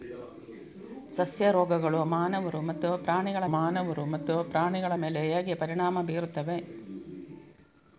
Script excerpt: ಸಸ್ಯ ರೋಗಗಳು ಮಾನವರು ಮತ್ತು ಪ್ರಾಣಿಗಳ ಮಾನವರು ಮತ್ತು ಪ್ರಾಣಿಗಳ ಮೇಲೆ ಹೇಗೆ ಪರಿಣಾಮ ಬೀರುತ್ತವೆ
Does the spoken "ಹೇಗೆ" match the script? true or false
true